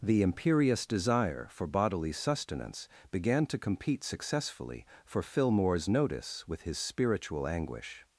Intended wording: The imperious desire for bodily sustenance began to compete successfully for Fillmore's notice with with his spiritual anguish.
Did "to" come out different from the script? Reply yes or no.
no